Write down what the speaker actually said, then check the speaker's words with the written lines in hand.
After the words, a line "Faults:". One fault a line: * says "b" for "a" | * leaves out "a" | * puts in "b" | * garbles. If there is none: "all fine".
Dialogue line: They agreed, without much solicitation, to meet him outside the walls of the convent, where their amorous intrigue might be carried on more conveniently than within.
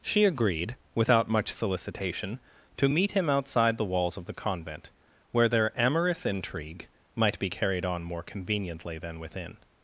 She agreed, without much solicitation, to meet him outside the walls of the convent, where their amorous intrigue might be carried on more conveniently than within.
Faults:
* says "She" for "They"